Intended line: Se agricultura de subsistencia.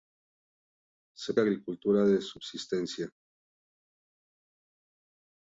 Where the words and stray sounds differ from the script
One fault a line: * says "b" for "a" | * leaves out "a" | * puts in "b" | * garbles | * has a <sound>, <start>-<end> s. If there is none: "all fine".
all fine